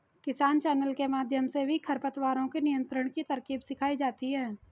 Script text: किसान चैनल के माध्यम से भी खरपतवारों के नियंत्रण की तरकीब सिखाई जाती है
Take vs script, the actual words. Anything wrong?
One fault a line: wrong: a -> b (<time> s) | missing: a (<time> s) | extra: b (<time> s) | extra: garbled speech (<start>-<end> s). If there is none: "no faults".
no faults